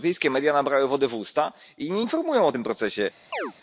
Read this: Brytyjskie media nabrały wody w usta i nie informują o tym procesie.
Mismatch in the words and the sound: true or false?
true